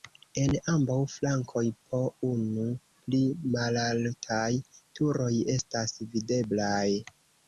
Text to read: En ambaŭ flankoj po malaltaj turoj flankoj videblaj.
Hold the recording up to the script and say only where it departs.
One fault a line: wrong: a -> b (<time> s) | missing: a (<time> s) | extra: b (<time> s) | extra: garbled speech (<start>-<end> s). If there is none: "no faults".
extra: unu pli (2.3 s)
wrong: flankoj -> estas (5.6 s)